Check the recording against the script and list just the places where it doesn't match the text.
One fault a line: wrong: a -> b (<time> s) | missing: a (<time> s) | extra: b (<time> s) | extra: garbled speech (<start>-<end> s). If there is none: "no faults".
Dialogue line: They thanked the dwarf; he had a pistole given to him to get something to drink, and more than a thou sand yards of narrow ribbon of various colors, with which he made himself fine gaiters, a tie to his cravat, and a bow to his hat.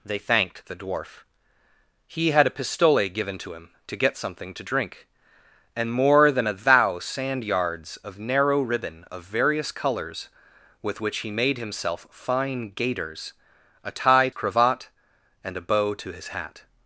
missing: to his (14.3 s)